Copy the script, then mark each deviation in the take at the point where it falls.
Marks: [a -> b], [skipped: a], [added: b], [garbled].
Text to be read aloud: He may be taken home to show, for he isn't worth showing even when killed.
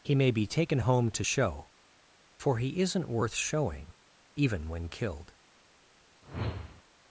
He may be taken home to show, for he isn't worth showing even when killed.